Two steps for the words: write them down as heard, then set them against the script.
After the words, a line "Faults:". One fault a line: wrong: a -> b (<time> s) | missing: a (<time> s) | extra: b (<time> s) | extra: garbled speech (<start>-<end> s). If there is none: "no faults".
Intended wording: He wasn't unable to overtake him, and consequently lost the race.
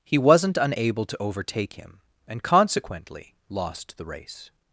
He wasn't unable to overtake him, and consequently lost the race.
Faults:
no faults